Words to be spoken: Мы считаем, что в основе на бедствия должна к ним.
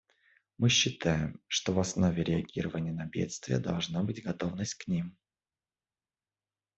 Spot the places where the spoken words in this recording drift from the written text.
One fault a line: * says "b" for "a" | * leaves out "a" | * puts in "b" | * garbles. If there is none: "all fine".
* puts in "реагирования"
* puts in "быть готовность"